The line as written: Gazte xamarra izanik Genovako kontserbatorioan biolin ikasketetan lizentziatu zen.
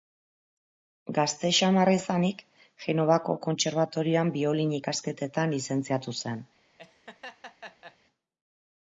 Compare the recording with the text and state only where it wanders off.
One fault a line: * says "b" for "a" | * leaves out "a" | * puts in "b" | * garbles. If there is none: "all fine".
all fine